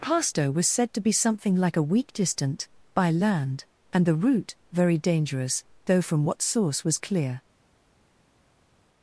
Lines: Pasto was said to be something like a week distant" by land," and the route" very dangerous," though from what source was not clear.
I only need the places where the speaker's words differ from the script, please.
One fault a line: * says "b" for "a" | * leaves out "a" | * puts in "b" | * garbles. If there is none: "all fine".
* leaves out "not"